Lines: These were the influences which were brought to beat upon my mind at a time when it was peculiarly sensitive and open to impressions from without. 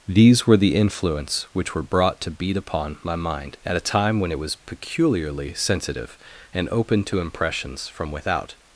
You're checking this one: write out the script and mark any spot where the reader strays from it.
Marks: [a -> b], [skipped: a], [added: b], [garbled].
These were the [influences -> influence] which were brought to beat upon my mind at a time when it was peculiarly sensitive and open to impressions from without.